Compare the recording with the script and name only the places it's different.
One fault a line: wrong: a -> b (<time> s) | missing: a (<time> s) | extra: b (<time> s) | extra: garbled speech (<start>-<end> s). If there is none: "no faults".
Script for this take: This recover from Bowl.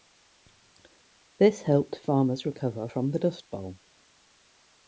extra: helped farmers (1.6 s)
extra: the Dust (3.1 s)